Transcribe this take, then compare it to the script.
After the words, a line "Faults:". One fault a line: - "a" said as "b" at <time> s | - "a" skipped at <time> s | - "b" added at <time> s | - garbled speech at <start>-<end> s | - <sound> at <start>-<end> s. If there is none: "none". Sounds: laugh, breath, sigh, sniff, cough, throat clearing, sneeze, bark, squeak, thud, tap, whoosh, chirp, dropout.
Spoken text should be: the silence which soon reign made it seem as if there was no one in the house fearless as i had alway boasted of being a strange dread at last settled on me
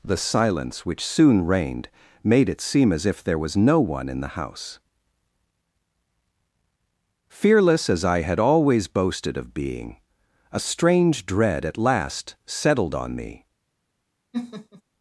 the silence which soon reigned made it seem as if there was no one in the house fearless as i had always boasted of being a strange dread at last settled on me
Faults:
- "reign" said as "reigned" at 1.4 s
- "alway" said as "always" at 8.4 s
- laugh at 14.3-14.8 s